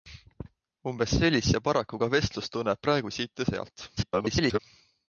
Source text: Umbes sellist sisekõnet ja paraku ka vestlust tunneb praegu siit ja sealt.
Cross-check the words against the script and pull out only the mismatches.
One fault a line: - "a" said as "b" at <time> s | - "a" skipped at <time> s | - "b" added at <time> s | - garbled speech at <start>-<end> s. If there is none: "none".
- "sisekõnet" skipped at 1.5 s
- garbled speech at 4.0-4.6 s